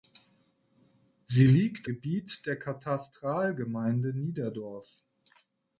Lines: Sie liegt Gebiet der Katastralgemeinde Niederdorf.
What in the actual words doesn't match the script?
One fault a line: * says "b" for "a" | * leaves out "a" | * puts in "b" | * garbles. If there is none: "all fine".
all fine